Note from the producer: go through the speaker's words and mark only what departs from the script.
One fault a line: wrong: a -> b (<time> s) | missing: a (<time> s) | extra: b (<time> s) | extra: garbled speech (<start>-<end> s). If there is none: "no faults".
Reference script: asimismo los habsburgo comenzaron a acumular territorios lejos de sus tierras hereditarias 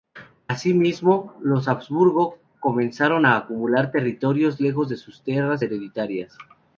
no faults